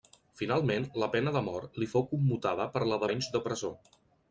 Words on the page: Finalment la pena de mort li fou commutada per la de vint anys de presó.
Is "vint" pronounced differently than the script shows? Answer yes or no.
yes